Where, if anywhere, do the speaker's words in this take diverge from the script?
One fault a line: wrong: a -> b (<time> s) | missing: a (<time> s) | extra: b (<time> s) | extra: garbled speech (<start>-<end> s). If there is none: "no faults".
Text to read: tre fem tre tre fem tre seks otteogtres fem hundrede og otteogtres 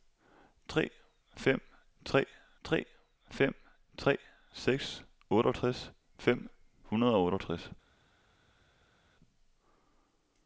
no faults